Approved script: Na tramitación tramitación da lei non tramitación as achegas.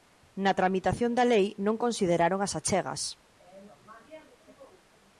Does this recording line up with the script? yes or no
no